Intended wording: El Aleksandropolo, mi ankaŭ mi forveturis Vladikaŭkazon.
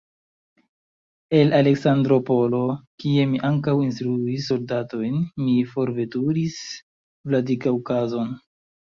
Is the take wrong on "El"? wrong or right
right